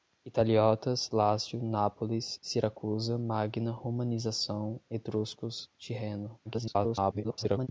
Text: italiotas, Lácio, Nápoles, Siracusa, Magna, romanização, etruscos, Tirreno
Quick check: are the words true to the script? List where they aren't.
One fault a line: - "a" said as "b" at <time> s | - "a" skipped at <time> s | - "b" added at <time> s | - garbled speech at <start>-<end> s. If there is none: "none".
- garbled speech at 6.4-7.7 s